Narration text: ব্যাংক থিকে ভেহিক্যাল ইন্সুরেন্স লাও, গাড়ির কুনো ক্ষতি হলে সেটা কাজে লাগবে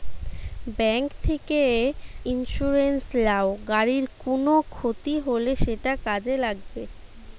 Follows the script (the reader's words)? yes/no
no